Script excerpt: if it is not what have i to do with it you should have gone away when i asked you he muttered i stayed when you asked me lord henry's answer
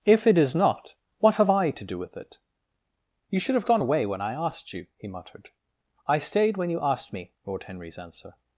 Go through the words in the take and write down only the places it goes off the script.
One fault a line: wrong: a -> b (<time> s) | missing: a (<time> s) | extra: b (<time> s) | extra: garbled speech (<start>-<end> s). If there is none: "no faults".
no faults